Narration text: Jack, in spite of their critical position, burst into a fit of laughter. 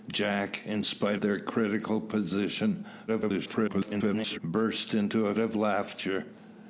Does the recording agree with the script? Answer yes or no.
no